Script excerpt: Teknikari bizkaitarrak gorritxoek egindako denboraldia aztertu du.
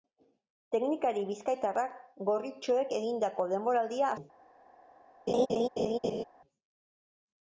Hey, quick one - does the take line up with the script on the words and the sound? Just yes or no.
no